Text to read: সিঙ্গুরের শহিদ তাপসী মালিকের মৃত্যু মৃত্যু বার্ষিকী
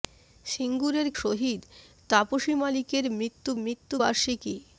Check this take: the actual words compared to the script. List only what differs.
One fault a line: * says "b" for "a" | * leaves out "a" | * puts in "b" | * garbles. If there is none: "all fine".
all fine